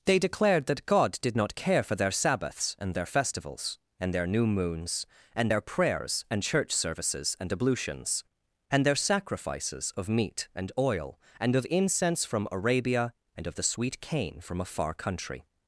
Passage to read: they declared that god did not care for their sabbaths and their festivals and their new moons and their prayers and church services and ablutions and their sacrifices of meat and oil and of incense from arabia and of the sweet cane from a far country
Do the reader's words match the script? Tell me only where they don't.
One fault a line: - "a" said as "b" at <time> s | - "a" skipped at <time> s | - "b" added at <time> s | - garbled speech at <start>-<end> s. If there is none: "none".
none